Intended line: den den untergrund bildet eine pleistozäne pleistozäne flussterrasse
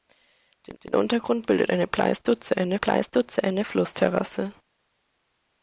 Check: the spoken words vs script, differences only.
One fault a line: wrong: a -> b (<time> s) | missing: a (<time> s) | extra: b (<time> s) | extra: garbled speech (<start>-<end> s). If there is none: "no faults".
no faults